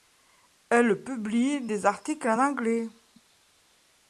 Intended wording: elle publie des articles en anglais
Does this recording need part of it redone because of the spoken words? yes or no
no